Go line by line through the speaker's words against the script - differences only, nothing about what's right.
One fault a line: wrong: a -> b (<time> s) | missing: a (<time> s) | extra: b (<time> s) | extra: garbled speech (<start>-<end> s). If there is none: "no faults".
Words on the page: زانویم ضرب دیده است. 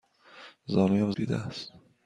missing: ضرب (1.1 s)